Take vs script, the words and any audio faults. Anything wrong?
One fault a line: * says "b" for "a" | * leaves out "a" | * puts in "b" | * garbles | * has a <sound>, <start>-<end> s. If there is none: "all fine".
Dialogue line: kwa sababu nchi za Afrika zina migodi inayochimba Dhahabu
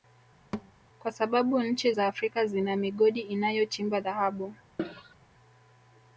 * has a thud, 0.5-0.7 s
* has a cough, 4.8-5.2 s